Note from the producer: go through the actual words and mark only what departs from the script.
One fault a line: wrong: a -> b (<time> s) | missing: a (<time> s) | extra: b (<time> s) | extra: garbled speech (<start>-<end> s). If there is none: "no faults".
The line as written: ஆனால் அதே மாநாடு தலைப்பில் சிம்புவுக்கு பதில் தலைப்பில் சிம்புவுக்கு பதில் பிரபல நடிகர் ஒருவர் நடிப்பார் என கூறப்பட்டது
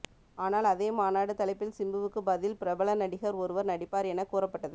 missing: தலைப்பில் சிம்புவுக்கு பதில் (2.6 s)